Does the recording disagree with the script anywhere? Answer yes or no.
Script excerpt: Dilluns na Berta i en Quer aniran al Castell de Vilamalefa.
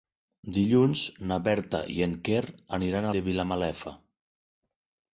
yes